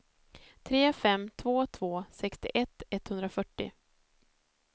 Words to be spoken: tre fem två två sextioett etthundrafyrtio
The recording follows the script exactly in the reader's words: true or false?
true